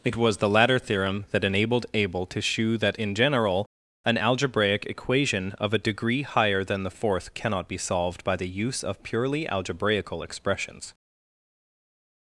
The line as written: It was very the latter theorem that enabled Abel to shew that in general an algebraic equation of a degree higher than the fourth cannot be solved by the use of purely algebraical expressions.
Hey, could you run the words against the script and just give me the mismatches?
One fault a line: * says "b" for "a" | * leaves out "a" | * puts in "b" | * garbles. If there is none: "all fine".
* leaves out "very"